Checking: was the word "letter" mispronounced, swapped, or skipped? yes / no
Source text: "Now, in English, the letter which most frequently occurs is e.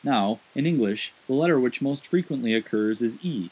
no